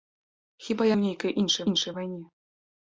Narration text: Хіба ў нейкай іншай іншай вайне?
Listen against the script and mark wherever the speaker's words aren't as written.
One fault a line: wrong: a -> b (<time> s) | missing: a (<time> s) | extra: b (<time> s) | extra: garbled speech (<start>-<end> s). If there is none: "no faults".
no faults